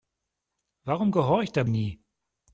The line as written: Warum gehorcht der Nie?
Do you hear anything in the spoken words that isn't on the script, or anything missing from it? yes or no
no